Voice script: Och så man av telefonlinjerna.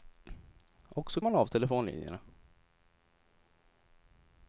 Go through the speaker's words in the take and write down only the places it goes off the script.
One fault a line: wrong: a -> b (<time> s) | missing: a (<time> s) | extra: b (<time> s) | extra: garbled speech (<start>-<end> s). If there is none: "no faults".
no faults